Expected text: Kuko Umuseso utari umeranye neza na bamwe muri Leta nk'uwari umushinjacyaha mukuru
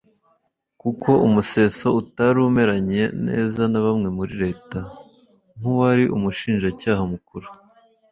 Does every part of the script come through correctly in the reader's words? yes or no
yes